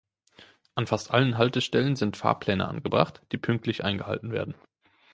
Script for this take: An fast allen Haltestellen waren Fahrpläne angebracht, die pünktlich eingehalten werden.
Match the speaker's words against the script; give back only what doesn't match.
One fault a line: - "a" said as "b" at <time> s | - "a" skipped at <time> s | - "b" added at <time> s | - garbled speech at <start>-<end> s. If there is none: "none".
- "waren" said as "sind" at 1.9 s